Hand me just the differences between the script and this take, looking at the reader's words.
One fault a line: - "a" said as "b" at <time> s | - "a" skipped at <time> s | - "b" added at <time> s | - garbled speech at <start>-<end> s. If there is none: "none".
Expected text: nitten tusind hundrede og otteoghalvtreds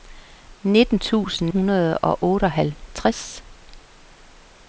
none